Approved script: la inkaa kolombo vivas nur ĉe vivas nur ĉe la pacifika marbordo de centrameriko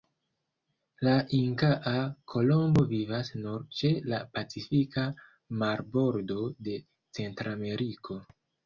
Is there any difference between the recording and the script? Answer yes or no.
yes